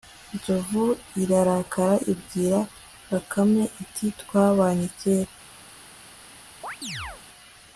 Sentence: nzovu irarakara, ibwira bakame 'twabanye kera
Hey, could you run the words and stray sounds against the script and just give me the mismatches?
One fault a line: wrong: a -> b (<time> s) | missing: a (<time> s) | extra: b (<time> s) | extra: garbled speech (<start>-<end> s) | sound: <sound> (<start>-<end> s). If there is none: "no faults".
extra: iti (3.8 s)
sound: chirp (6.6-7.2 s)